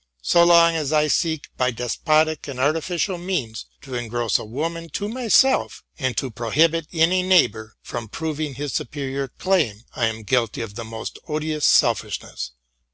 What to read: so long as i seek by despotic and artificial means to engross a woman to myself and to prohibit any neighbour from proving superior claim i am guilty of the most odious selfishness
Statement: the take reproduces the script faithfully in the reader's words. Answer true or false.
false